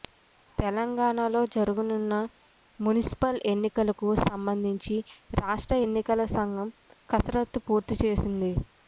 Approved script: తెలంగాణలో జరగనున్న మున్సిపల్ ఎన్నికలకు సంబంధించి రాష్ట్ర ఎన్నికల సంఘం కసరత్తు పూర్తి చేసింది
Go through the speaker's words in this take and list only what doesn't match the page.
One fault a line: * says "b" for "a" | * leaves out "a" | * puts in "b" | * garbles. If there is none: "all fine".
all fine